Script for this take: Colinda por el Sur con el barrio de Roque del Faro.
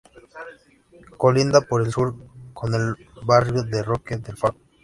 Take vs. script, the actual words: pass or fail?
pass